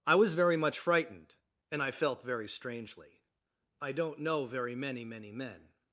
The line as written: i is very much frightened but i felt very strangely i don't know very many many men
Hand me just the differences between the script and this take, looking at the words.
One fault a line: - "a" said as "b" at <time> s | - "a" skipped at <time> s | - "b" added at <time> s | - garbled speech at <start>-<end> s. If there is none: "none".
- "is" said as "was" at 0.1 s
- "but" said as "and" at 1.7 s